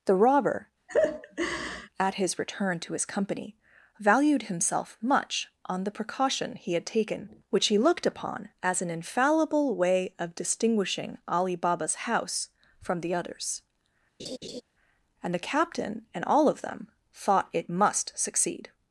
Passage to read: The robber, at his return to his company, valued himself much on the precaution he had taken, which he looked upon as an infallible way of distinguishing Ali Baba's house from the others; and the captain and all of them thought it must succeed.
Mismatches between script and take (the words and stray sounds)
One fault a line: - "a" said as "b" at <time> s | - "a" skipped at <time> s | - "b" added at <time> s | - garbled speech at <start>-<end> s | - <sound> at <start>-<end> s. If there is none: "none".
- laugh at 0.9-1.9 s
- laugh at 14.2-14.6 s